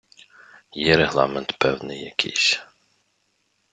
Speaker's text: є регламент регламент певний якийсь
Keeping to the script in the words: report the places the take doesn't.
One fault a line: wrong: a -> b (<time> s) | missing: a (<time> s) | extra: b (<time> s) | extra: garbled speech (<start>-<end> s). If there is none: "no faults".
missing: регламент (1.6 s)